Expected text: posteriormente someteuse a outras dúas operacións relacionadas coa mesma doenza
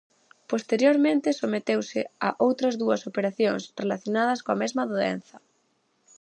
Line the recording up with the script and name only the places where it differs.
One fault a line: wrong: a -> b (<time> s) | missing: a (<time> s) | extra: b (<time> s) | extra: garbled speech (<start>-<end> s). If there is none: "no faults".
no faults